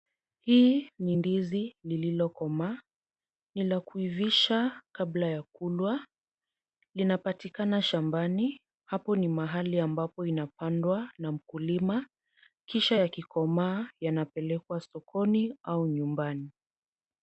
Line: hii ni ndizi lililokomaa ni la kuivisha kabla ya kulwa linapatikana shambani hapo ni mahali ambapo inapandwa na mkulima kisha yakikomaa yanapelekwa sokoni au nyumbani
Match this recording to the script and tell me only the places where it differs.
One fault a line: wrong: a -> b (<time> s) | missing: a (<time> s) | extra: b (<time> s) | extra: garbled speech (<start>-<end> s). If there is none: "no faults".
no faults